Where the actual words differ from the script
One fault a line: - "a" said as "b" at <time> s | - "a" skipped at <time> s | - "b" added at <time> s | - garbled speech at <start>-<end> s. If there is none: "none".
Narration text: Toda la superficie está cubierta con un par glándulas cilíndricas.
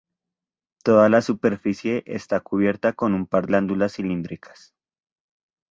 none